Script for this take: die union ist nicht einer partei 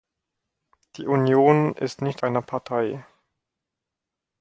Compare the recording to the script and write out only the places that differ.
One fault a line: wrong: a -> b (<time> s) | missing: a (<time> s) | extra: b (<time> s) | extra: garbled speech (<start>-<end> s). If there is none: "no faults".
no faults